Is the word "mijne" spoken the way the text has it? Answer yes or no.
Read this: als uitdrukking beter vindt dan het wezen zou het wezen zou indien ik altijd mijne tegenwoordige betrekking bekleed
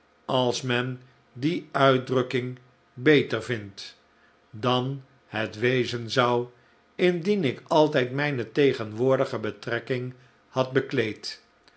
yes